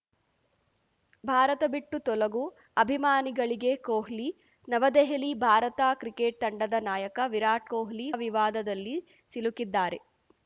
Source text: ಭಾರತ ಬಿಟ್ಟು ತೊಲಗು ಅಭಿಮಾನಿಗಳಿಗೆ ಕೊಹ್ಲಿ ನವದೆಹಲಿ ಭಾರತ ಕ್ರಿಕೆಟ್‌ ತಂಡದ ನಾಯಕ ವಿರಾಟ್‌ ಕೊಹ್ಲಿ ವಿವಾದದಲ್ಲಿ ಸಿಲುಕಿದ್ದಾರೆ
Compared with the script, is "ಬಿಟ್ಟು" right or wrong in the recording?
right